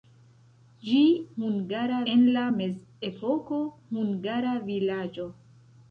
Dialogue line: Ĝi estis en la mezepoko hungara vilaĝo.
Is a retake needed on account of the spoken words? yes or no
yes